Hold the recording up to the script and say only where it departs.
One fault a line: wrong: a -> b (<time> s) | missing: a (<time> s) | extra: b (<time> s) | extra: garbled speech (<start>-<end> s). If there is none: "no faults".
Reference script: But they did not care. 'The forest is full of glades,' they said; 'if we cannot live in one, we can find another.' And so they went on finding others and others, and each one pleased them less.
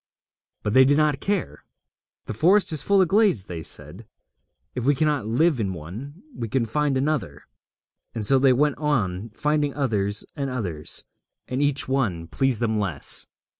no faults